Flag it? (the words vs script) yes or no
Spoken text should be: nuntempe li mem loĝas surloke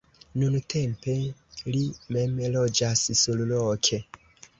no